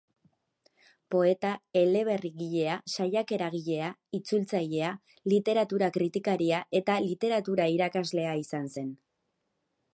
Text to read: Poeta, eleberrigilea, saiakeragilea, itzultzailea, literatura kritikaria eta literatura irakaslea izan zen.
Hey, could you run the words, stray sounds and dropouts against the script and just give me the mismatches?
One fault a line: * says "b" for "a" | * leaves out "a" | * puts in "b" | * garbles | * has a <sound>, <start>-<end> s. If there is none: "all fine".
all fine